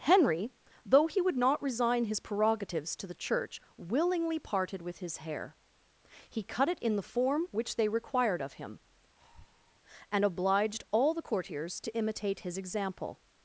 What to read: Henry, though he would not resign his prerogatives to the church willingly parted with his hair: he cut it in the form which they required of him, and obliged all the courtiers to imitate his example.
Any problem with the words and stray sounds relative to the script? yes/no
yes